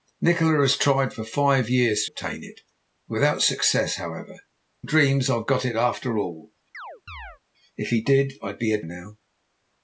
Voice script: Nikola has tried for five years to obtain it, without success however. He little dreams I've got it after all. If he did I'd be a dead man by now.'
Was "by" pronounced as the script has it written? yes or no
no